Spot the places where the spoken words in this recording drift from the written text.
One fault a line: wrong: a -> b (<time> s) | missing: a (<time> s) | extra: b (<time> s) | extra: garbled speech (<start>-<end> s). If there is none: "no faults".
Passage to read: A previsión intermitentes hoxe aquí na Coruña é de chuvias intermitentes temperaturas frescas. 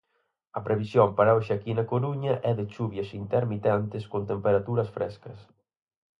wrong: intermitentes -> para (1.2 s)
extra: con (4.1 s)